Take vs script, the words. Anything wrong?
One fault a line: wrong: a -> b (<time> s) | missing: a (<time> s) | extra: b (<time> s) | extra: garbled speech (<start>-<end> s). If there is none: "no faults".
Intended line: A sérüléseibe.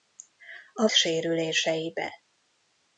no faults